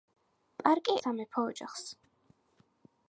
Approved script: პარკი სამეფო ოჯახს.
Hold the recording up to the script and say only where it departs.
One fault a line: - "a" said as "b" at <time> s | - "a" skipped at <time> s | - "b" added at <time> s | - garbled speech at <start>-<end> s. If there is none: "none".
none